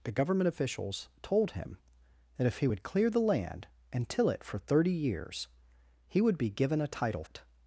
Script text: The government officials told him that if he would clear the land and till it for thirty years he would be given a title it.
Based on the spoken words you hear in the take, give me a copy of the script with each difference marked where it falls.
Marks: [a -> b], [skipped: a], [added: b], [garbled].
The government officials told him that if he would clear the land and till it for thirty years he would be given a title it.